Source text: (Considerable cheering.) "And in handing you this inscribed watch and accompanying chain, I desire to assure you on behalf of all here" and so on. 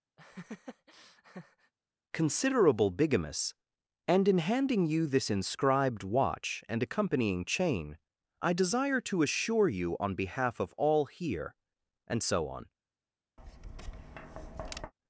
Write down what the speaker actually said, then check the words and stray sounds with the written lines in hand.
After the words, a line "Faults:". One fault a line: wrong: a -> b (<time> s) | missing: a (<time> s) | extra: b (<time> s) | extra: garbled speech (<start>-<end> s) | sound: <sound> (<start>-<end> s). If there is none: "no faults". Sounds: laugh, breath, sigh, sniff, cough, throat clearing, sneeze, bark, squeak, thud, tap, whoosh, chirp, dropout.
(Considerable bigamous.) "And in handing you this inscribed watch and accompanying chain, I desire to assure you on behalf of all here" and so on.
Faults:
sound: laugh (0.2-1.7 s)
wrong: cheering -> bigamous (2.9 s)
sound: tap (13.4-14.9 s)